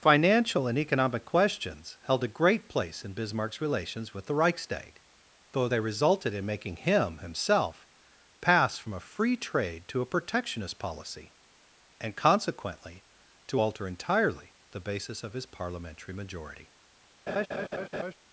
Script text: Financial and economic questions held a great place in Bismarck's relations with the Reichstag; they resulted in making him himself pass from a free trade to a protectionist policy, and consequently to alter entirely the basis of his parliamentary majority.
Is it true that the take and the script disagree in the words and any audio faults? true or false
true